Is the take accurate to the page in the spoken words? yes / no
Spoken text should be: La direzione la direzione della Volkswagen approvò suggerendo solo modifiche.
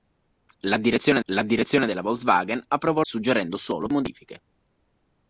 yes